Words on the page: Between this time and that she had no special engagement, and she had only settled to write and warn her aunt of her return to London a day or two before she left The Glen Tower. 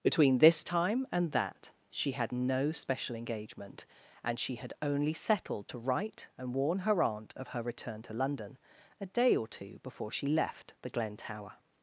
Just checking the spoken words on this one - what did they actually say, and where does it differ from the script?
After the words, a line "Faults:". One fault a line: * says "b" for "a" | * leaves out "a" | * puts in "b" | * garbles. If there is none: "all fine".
Between this time and that she had no special engagement, and she had only settled to write and warn her aunt of her return to London a day or two before she left The Glen Tower.
Faults:
all fine